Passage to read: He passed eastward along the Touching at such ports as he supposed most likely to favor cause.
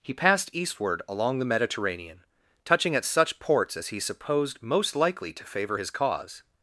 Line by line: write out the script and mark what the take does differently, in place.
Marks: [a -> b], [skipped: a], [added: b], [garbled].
He passed eastward along the [added: Mediterranean] Touching at such ports as he supposed most likely to favor [added: his] cause.